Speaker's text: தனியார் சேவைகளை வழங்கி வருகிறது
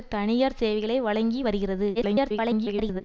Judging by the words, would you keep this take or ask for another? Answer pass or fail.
fail